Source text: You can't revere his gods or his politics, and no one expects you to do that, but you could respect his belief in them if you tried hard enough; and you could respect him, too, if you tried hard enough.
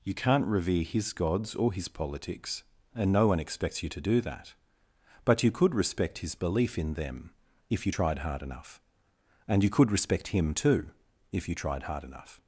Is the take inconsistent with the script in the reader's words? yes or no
no